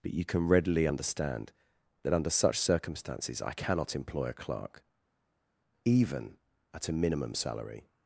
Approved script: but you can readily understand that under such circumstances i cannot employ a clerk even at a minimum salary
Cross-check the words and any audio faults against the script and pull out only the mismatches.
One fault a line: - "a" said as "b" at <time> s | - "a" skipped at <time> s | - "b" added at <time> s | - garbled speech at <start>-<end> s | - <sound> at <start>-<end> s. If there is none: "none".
none